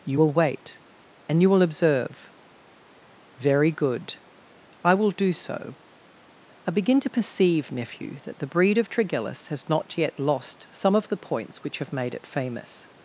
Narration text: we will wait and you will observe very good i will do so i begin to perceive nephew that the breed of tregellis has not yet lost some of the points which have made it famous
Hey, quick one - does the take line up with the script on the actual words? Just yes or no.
no